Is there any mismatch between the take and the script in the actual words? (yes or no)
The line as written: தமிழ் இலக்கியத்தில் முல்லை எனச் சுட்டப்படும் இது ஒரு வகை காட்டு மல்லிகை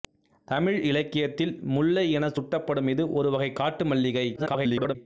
yes